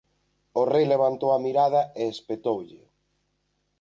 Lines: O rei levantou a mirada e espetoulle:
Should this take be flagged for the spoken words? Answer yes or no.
no